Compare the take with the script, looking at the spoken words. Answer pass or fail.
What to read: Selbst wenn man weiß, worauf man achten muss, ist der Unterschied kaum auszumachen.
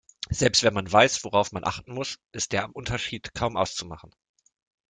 pass